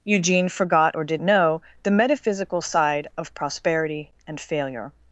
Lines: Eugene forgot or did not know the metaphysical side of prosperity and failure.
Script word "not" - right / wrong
wrong